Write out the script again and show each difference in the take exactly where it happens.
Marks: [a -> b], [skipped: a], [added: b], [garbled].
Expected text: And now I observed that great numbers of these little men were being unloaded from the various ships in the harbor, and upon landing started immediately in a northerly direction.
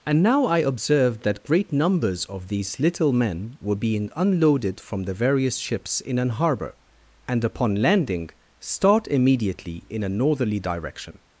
And now I observed that great numbers of these little men were being unloaded from the various ships in [the -> an] harbor, and upon landing [started -> start] immediately in a northerly direction.